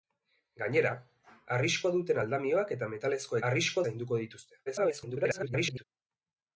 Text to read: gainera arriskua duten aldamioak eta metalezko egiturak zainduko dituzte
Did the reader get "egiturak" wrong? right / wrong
wrong